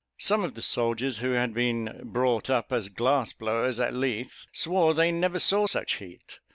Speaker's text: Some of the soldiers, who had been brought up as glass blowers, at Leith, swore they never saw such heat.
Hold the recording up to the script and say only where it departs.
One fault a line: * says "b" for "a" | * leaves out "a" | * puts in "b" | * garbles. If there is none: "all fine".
all fine